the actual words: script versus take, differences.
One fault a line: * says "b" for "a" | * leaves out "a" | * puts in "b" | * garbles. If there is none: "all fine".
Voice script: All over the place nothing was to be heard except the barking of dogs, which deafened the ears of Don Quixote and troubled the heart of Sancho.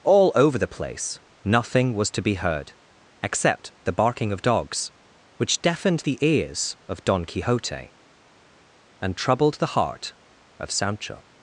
all fine